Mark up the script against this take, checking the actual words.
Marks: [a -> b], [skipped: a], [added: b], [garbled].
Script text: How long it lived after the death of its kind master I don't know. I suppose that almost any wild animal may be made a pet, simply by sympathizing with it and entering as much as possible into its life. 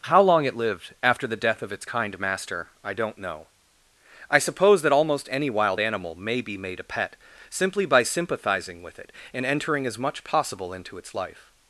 How long it lived after the death of its kind master I don't know. I suppose that almost any wild animal may be made a pet, simply by sympathizing with it and entering as much [skipped: as] possible into its life.